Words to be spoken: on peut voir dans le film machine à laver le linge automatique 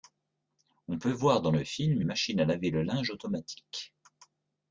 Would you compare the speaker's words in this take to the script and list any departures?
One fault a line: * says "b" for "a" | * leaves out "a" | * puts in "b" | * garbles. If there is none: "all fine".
all fine